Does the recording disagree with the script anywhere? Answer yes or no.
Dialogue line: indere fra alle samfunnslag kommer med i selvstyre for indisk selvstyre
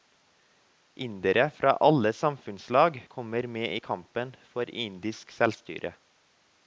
yes